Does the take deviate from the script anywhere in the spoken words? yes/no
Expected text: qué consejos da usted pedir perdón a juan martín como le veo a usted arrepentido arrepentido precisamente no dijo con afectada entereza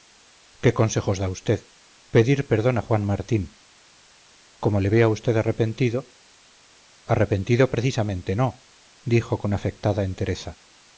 no